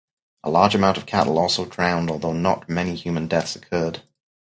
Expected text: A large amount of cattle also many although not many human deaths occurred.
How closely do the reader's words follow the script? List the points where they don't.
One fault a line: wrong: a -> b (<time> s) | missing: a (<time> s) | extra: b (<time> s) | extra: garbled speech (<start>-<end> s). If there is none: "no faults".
wrong: many -> drowned (1.6 s)